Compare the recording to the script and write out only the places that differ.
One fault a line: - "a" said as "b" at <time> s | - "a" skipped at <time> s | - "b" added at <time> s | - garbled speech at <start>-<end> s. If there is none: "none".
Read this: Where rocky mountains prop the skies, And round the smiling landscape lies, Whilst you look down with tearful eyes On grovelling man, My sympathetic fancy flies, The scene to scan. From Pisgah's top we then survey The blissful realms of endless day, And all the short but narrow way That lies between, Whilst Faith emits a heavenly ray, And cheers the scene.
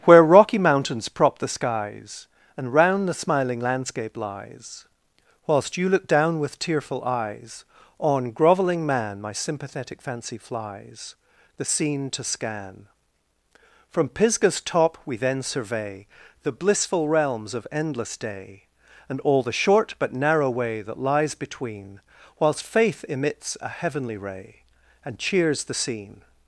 none